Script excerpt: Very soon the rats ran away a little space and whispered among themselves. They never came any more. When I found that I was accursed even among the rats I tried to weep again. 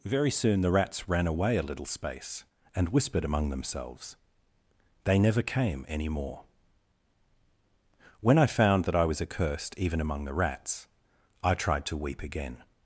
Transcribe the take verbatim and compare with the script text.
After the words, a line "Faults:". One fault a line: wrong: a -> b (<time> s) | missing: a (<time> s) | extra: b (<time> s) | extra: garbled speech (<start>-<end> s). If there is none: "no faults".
Very soon the rats ran away a little space and whispered among themselves. They never came any more. When I found that I was accursed even among the rats I tried to weep again.
Faults:
no faults